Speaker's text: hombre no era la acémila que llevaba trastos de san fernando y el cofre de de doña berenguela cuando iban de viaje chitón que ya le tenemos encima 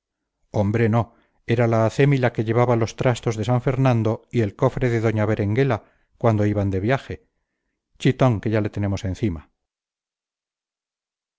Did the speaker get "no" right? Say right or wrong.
right